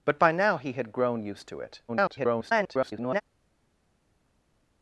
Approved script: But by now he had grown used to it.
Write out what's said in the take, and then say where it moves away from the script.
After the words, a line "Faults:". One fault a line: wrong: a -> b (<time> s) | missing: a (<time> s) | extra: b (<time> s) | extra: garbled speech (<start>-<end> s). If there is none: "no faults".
But by now he had grown used to it. [garbled]
Faults:
extra: garbled speech (1.9-3.2 s)